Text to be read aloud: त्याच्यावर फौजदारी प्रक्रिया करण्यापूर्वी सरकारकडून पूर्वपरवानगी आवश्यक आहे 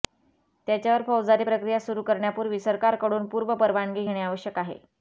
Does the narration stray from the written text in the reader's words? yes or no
yes